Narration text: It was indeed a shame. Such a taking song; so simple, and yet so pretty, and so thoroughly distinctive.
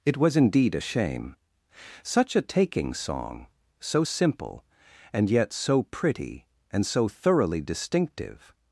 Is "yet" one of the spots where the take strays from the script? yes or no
no